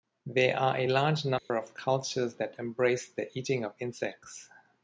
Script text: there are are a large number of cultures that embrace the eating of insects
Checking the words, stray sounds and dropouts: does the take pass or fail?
fail